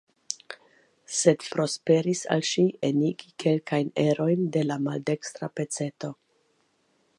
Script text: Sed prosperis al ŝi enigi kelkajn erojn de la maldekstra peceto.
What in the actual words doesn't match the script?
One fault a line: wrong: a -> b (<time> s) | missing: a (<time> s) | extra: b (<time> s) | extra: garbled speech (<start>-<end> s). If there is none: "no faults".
no faults